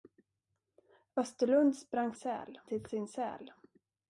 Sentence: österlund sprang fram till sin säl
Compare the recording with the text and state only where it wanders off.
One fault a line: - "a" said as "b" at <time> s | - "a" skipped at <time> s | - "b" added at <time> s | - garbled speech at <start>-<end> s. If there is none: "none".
- "fram" said as "säl" at 2.1 s